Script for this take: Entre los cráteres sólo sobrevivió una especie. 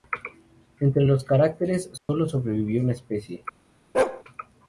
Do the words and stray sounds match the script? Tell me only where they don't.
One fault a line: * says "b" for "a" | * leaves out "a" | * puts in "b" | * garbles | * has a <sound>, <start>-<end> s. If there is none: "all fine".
* has a dropout, 2.0-2.1 s
* has a bark, 3.9-4.2 s